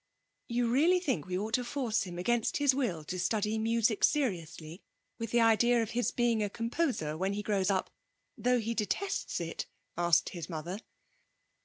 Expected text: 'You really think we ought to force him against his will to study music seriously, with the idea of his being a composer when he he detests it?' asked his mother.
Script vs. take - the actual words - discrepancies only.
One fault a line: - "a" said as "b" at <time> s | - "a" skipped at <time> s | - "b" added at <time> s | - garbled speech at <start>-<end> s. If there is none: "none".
- "grows up though" added at 7.4 s